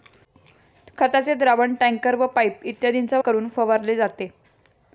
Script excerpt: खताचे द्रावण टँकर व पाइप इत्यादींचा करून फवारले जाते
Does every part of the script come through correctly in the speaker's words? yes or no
yes